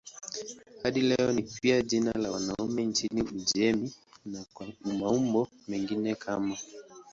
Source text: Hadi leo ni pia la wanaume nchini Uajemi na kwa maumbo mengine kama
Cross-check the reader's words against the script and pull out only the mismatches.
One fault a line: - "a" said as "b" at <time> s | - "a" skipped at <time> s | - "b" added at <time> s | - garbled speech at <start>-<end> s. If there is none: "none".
- "jina" added at 1.8 s